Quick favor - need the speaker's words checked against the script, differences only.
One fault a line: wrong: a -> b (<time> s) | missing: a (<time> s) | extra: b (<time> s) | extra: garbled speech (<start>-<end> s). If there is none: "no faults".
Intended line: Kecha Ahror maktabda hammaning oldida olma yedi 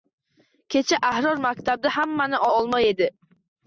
missing: oldida (2.5 s)